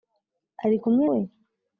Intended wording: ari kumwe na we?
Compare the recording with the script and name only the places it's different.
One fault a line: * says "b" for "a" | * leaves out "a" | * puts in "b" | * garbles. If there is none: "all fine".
* leaves out "na"